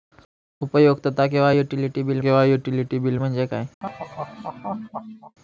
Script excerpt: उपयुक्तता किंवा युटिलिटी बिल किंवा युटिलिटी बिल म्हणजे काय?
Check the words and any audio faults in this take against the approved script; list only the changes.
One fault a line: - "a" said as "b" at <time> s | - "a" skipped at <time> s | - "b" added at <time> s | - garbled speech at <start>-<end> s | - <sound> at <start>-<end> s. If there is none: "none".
- laugh at 3.8-5.4 s